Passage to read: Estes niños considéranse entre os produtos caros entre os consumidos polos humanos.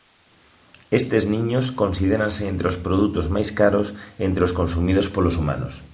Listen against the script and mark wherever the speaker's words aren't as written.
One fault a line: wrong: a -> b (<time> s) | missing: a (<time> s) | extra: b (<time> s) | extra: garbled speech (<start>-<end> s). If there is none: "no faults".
extra: máis (3.4 s)